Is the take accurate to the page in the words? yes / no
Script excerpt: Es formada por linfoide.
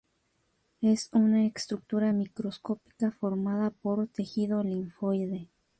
no